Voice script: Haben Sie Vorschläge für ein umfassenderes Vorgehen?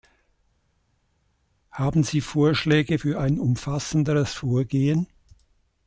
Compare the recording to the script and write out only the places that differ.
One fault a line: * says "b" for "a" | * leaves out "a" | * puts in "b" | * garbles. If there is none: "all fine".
all fine